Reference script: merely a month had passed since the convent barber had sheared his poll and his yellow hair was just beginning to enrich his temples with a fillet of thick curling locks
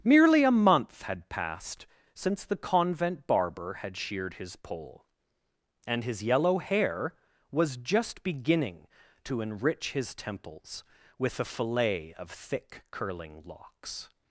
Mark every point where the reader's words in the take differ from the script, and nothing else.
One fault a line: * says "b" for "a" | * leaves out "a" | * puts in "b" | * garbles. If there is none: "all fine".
all fine